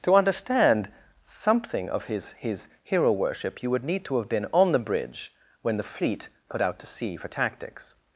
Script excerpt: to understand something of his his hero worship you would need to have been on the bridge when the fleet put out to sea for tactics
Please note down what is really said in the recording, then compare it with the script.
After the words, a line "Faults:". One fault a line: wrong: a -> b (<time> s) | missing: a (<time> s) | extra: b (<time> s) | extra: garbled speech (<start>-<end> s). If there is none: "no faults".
to understand something of his his hero worship you would need to have been on the bridge when the fleet put out to sea for tactics
Faults:
no faults